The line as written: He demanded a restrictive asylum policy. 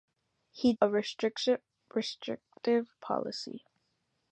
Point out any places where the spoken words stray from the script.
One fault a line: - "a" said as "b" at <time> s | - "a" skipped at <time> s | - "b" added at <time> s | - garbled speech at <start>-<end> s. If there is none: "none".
- "demanded" skipped at 0.7 s
- "asylum" skipped at 1.6 s